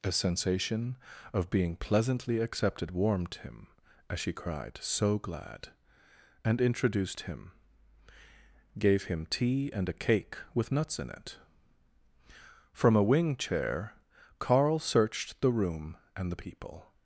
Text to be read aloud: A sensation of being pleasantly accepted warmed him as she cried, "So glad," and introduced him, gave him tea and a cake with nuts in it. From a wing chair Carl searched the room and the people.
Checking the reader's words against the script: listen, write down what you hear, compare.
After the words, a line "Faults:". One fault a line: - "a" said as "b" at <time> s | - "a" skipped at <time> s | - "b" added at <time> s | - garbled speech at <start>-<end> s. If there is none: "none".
A sensation of being pleasantly accepted warmed him as she cried, "So glad," and introduced him, gave him tea and a cake with nuts in it. From a wing chair Carl searched the room and the people.
Faults:
none